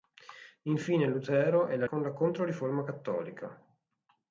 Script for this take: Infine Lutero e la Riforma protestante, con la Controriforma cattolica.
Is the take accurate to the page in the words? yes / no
no